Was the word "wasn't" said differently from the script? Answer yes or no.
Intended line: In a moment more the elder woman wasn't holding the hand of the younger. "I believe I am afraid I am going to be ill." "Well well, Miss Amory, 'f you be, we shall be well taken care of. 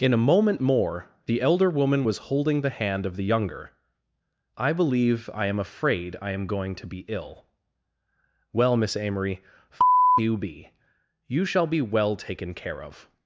yes